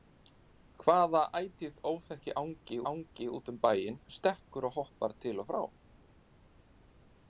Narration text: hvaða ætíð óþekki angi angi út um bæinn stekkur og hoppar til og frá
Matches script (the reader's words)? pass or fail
pass